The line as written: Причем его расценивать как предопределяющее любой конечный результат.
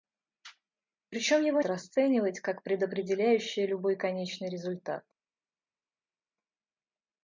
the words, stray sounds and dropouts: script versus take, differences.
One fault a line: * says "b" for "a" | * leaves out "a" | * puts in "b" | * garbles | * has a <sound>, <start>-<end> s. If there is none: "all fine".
all fine